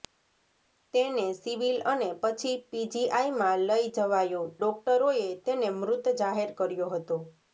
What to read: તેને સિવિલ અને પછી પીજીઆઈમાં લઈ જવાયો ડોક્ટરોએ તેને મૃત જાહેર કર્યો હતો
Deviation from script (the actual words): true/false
false